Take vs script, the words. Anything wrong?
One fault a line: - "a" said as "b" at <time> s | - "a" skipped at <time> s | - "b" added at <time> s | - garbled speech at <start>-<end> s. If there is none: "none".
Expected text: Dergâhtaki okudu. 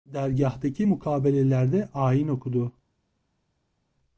- "mukabelelerde ayin" added at 0.8 s